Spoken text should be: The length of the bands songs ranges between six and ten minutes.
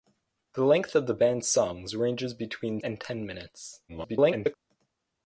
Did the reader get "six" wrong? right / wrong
wrong